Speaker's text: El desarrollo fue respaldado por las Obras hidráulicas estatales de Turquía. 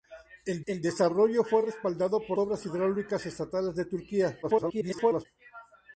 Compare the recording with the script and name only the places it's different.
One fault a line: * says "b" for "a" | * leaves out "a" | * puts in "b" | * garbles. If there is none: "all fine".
* puts in "el"
* leaves out "las"
* garbles